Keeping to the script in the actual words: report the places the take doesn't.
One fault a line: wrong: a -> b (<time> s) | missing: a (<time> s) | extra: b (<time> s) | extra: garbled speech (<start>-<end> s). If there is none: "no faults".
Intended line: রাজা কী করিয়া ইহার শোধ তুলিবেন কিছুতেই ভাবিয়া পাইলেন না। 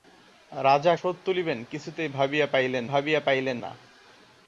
missing: কী করিয়া ইহার (0.9 s)
extra: ভাবিয়া পাইলেন (2.8 s)